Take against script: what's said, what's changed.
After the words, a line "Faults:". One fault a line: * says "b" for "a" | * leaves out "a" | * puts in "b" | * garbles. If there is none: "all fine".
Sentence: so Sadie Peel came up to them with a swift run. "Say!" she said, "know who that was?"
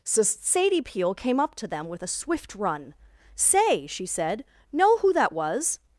so Sadie Peel came up to them with a swift run. "Say!" she said, "know who that was?"
Faults:
all fine